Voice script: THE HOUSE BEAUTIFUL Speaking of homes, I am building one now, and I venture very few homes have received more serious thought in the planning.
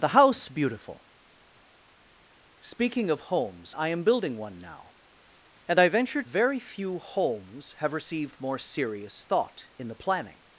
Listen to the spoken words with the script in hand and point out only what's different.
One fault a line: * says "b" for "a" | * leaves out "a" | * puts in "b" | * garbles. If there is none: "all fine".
all fine